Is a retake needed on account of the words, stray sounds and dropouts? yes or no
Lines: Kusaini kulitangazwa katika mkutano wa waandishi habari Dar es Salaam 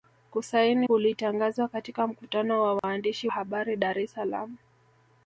yes